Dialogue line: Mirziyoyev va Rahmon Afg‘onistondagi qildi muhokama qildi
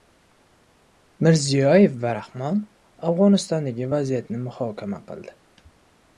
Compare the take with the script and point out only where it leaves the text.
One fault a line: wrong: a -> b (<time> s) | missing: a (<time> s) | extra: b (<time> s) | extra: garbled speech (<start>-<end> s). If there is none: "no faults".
wrong: qildi -> vaziyatni (4.0 s)